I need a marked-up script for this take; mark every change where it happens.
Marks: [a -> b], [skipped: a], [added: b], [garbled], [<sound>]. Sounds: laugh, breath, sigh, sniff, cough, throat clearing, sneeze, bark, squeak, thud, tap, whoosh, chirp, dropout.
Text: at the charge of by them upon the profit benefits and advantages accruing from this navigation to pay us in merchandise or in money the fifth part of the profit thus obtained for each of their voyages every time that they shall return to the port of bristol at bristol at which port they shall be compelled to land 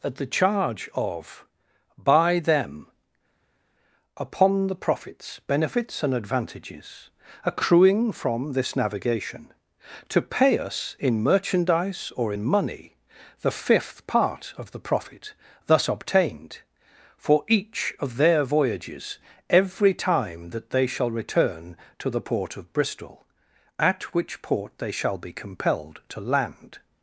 at the charge of by them upon the [profit -> profits] benefits and advantages accruing from this navigation to pay us in merchandise or in money the fifth part of the profit thus obtained for each of their voyages every time that they shall return to the port of bristol at [skipped: bristol at] which port they shall be compelled to land